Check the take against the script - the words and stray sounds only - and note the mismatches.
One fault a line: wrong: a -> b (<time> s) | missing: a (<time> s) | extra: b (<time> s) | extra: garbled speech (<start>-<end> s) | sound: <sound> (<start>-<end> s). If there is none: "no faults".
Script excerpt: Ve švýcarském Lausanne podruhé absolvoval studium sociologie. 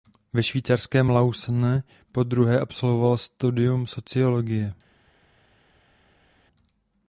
no faults